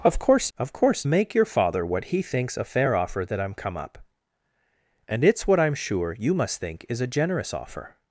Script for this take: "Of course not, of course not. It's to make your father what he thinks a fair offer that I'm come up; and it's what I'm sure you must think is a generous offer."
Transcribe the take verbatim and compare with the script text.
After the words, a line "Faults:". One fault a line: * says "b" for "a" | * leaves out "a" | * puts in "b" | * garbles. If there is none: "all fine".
"Of course of course make your father what he thinks a fair offer that I'm come up; and it's what I'm sure you must think is a generous offer."
Faults:
* leaves out "not"
* leaves out "not It's to"